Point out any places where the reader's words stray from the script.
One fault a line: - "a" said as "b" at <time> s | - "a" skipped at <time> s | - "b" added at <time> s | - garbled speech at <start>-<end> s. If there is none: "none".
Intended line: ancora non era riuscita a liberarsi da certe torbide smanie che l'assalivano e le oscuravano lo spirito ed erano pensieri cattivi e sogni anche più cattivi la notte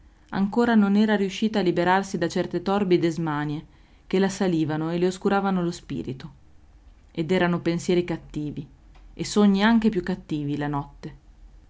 none